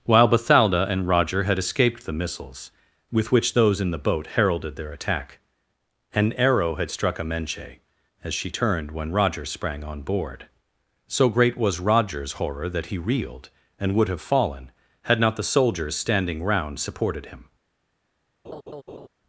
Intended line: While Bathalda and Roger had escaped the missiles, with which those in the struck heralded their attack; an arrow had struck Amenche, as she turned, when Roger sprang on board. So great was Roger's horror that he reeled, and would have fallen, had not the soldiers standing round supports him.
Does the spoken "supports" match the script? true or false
false